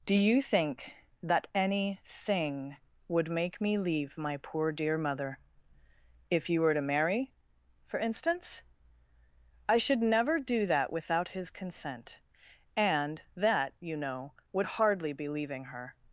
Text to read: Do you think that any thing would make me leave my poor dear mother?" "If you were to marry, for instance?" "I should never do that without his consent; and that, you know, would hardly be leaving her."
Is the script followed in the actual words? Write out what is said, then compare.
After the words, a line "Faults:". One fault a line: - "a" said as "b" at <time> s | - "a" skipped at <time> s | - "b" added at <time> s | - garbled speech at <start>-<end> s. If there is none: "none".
Do you think that any thing would make me leave my poor dear mother?" "If you were to marry, for instance?" "I should never do that without his consent; and that, you know, would hardly be leaving her."
Faults:
none